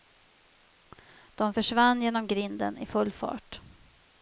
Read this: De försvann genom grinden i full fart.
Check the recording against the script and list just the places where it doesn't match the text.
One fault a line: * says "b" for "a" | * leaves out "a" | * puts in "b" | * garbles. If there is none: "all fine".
all fine